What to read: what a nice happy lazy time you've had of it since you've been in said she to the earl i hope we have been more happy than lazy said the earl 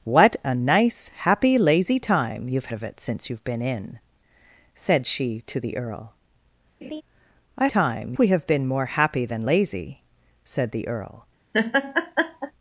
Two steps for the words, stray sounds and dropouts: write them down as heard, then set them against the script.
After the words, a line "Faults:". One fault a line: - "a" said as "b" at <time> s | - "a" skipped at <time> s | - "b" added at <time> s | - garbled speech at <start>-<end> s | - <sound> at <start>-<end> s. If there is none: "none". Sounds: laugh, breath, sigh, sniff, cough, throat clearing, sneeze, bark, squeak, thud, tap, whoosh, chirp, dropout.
what a nice happy lazy time you've of it since you've been in said she to the earl i time we have been more happy than lazy said the earl
Faults:
- "had" skipped at 2.7 s
- laugh at 6.8-7.0 s
- "hope" said as "time" at 7.7 s
- laugh at 11.5-12.5 s